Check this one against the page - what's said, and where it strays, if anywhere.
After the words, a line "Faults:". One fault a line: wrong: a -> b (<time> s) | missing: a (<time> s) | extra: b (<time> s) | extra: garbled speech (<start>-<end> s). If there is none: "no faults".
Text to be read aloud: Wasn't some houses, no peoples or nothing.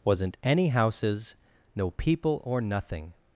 Wasn't any houses, no people or nothing.
Faults:
wrong: some -> any (0.4 s)
wrong: peoples -> people (1.9 s)